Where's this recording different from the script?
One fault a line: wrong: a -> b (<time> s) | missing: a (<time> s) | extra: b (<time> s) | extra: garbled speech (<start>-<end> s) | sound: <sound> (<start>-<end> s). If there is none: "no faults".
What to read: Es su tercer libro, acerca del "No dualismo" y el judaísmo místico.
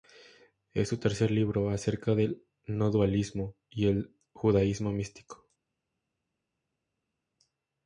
no faults